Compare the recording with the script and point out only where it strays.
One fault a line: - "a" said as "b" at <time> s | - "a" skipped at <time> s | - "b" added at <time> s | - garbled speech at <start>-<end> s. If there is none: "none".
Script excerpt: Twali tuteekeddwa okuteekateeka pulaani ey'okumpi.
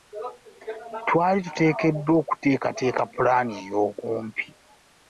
none